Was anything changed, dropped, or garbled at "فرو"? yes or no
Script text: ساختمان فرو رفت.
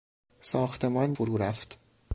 no